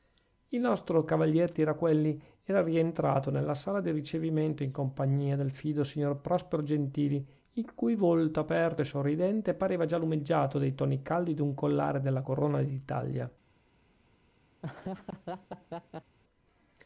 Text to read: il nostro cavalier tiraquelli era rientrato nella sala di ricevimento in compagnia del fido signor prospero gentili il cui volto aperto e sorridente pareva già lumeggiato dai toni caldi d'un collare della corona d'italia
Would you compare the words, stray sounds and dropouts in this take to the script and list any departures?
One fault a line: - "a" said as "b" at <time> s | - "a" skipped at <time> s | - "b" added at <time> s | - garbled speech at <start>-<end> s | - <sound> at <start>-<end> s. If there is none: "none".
- laugh at 14.6-16.2 s